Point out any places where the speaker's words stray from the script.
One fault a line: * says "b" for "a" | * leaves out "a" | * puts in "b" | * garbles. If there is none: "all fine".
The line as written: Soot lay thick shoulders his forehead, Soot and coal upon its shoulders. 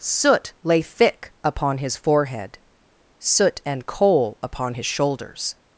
* says "upon" for "shoulders"
* says "his" for "its"